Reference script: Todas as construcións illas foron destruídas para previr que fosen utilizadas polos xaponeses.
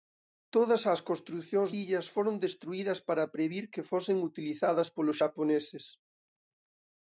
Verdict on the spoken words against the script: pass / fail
pass